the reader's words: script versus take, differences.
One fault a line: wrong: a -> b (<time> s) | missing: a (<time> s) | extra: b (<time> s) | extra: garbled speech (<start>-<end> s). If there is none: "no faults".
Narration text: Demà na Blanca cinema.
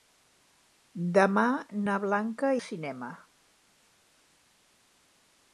no faults